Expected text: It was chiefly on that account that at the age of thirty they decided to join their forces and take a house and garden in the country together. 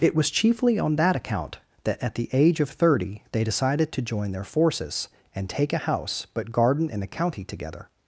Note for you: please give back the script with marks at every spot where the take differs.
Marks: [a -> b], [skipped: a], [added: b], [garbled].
It was chiefly on that account that at the age of thirty they decided to join their forces and take a house [and -> but] garden in the [country -> county] together.